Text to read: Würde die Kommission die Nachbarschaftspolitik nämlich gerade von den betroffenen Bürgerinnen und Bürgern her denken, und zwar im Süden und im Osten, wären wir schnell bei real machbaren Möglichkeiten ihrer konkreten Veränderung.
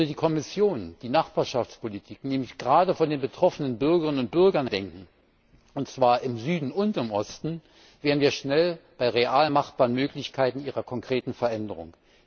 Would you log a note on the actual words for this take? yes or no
yes